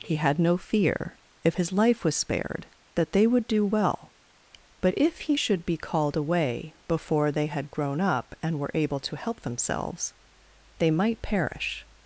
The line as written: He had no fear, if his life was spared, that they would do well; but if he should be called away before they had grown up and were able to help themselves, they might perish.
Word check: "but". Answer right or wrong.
right